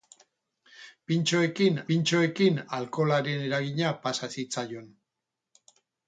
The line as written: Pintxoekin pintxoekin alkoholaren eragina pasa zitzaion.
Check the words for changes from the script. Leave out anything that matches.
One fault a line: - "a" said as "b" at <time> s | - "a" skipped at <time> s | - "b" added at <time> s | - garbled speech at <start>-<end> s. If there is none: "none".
none